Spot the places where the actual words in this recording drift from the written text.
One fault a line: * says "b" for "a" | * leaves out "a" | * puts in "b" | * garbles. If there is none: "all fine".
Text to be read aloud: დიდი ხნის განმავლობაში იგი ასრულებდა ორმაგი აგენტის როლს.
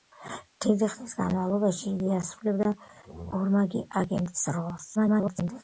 * garbles